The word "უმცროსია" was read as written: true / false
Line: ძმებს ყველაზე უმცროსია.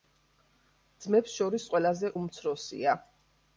true